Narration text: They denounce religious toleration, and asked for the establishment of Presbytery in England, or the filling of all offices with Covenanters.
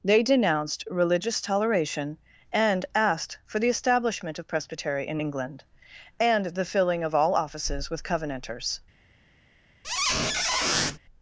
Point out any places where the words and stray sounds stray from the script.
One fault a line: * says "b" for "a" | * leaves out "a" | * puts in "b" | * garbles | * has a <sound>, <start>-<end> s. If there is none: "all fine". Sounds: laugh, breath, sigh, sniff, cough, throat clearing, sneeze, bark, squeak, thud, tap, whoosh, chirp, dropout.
* says "denounced" for "denounce"
* says "and" for "or"
* has a squeak, 9.8-11.0 s